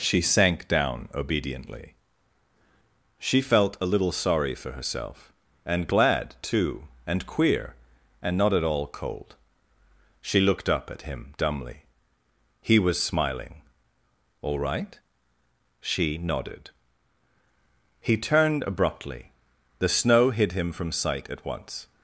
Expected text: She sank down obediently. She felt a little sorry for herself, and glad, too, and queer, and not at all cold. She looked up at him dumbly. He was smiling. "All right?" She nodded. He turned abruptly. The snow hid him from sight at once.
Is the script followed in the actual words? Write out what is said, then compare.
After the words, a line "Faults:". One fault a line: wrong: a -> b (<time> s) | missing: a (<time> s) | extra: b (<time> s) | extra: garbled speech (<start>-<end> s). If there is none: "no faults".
She sank down obediently. She felt a little sorry for herself, and glad, too, and queer, and not at all cold. She looked up at him dumbly. He was smiling. "All right?" She nodded. He turned abruptly. The snow hid him from sight at once.
Faults:
no faults